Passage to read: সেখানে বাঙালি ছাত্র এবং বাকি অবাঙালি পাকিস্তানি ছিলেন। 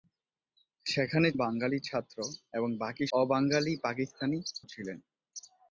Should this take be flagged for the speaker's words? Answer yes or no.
no